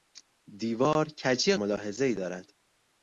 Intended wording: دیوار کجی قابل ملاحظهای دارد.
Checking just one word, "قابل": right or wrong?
wrong